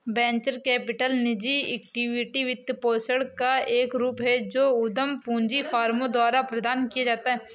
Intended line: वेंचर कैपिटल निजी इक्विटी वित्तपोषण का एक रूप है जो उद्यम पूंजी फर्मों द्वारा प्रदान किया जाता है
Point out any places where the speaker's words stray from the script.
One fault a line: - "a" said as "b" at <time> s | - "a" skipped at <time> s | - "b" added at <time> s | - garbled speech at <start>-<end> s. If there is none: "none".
none